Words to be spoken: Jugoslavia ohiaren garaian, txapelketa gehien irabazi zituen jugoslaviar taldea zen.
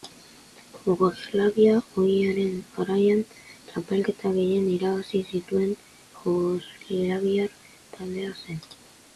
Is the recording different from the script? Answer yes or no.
no